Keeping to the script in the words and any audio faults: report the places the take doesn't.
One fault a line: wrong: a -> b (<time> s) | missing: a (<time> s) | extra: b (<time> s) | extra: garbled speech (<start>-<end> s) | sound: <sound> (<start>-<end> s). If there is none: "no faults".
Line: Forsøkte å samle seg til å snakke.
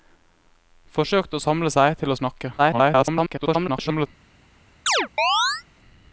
extra: garbled speech (2.6-4.1 s)
sound: chirp (4.9-5.6 s)